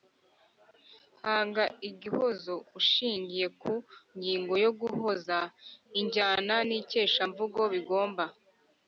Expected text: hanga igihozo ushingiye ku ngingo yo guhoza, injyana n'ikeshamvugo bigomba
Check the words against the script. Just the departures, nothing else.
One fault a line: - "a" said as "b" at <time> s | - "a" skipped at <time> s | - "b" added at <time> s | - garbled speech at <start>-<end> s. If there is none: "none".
none